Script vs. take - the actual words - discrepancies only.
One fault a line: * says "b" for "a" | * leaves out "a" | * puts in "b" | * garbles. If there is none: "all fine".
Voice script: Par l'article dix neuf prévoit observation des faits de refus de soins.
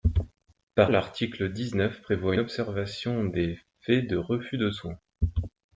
all fine